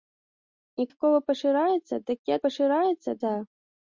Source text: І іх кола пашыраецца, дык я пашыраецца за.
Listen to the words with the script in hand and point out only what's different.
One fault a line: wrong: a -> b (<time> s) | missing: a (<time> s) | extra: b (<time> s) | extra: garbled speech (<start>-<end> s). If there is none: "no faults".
no faults